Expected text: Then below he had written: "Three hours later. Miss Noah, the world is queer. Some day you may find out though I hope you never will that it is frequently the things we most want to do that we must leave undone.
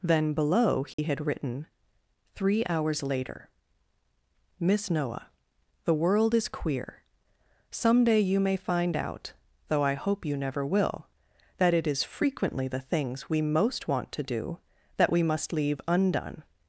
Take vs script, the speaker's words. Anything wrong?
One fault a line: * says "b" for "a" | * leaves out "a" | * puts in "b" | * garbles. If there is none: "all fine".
all fine